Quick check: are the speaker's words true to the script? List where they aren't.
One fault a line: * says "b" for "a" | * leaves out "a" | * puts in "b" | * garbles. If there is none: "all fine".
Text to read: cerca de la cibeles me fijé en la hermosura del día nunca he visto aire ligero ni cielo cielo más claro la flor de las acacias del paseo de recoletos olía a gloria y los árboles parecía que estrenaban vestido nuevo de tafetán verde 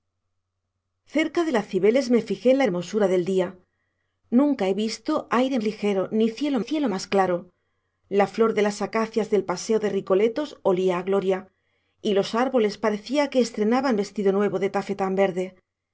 all fine